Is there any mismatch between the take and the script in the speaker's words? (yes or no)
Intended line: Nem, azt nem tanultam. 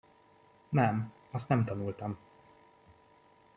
no